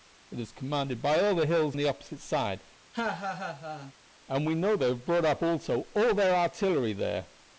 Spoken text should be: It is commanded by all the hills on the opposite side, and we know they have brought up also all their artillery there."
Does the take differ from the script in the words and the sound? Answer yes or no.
yes